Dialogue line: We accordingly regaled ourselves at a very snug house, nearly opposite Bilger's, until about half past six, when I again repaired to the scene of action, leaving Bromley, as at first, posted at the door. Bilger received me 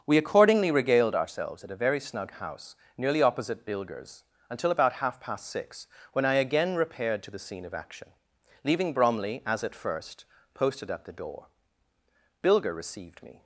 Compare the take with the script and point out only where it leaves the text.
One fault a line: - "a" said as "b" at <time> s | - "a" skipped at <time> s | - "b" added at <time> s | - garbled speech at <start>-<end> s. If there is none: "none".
none